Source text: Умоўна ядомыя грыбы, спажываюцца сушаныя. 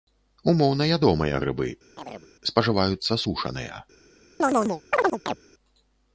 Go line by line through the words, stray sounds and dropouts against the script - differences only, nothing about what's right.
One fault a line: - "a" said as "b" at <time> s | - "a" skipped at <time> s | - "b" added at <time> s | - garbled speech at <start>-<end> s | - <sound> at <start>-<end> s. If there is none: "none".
- chirp at 2.0-2.3 s
- chirp at 4.4-5.4 s